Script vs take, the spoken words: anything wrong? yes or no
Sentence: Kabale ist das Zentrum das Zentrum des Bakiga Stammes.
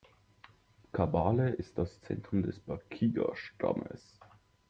yes